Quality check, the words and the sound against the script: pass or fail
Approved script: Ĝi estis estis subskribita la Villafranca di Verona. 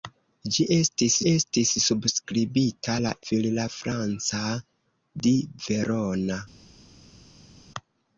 pass